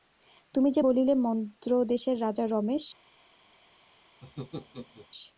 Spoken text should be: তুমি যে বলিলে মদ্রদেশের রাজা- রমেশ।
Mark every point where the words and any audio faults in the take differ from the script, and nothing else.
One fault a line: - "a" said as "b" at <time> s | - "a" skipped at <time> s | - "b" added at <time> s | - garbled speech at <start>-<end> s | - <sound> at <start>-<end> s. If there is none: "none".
- laugh at 4.2-5.1 s